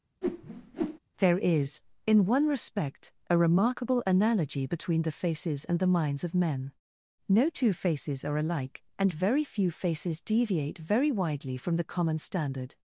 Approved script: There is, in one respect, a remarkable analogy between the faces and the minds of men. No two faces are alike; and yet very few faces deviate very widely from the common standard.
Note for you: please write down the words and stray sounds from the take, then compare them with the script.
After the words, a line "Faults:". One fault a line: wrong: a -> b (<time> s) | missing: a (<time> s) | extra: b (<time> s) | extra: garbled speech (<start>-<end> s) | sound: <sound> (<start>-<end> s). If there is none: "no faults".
There is, in one respect, a remarkable analogy between the faces and the minds of men. No two faces are alike; and very few faces deviate very widely from the common standard.
Faults:
sound: whoosh (0.2-1.0 s)
missing: yet (9.1 s)